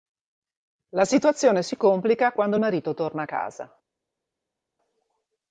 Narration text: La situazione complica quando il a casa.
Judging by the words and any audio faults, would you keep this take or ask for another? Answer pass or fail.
fail